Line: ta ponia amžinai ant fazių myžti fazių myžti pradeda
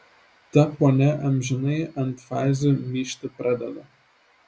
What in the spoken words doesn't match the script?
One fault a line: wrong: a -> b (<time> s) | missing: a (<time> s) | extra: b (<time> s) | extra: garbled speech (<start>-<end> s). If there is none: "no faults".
missing: fazių myžti (3.3 s)